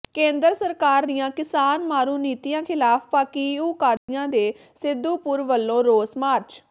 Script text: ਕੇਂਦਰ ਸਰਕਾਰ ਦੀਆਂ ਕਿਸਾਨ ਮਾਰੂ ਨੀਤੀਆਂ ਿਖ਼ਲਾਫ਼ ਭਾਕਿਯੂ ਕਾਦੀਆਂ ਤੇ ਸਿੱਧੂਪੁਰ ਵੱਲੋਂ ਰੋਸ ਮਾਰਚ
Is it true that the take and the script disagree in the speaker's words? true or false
false